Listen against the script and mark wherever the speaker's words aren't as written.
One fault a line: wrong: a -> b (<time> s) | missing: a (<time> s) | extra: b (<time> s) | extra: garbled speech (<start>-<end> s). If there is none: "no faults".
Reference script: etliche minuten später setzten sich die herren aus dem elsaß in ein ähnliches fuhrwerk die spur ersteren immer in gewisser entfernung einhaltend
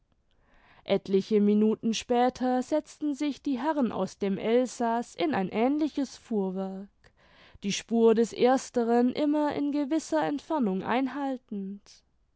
extra: des (8.1 s)